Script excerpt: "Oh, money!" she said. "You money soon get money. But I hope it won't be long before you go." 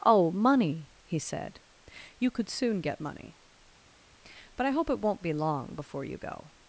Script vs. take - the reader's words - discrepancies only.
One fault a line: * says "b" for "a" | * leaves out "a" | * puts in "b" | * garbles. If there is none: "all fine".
* says "he" for "she"
* says "could" for "money"